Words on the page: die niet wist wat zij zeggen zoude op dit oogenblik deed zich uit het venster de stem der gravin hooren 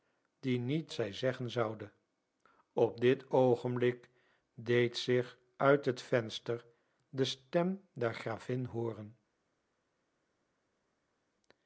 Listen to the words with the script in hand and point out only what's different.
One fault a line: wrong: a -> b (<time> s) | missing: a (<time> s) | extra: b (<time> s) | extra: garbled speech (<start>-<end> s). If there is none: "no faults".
missing: wist wat (0.9 s)